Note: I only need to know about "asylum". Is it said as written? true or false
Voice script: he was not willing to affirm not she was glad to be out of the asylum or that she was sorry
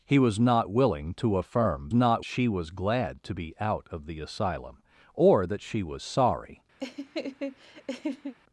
true